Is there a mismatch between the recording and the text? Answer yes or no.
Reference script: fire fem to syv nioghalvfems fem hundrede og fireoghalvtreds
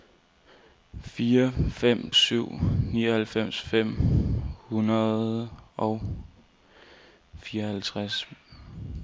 yes